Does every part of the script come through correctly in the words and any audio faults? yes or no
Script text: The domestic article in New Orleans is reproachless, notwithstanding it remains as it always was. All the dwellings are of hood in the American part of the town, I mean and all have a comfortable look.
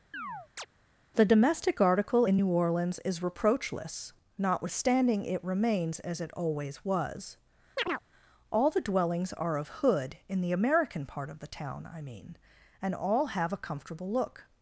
no